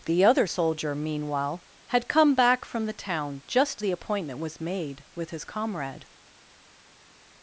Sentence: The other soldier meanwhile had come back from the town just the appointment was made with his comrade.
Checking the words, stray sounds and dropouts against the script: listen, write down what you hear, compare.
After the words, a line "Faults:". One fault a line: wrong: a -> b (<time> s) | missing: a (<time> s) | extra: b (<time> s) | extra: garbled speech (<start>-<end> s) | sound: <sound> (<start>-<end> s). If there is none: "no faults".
The other soldier meanwhile had come back from the town just the appointment was made with his comrade.
Faults:
no faults